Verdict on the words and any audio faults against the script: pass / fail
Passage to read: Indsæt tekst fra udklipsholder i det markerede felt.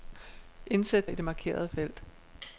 fail